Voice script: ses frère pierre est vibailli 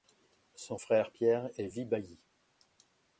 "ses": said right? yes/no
no